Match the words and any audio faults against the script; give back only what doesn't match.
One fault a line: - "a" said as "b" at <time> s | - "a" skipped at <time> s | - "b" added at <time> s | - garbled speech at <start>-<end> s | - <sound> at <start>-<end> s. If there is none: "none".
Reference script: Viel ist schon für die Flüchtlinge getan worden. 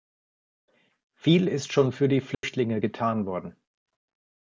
- dropout at 2.3-2.4 s